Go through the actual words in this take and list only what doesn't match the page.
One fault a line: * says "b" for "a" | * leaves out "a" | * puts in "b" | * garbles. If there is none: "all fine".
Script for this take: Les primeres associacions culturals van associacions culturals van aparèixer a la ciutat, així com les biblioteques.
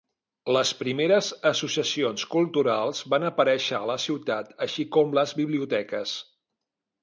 * leaves out "associacions culturals van"